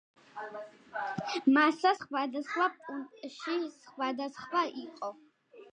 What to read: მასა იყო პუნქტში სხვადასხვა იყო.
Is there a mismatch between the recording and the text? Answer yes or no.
yes